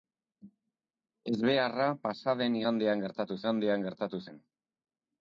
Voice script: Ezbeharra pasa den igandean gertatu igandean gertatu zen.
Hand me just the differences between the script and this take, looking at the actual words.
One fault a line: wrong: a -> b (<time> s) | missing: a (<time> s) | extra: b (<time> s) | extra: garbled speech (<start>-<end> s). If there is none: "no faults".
no faults